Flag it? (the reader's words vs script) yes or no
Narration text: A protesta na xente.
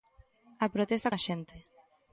no